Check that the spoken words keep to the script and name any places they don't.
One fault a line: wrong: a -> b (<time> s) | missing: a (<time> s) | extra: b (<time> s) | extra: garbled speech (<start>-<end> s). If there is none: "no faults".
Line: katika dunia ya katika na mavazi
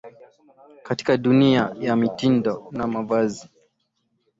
wrong: katika -> mitindo (1.9 s)